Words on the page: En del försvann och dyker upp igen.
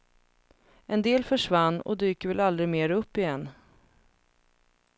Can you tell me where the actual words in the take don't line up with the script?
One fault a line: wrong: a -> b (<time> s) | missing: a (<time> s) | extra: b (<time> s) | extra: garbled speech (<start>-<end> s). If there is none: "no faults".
extra: väl aldrig mer (2.3 s)